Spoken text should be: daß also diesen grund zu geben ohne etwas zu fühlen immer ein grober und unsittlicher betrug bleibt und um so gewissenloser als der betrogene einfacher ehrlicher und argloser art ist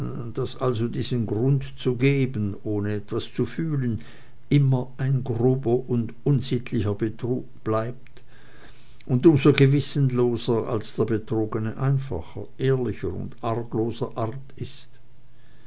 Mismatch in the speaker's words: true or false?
false